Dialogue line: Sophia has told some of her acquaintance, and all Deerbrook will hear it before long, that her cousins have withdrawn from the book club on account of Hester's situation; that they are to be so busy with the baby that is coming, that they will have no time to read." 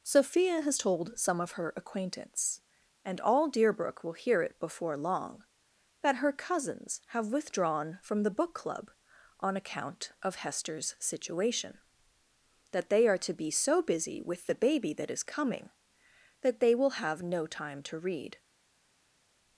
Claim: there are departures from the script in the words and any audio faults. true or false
false